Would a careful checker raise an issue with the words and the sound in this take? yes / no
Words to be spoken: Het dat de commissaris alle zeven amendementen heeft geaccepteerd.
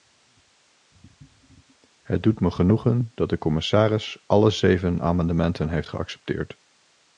yes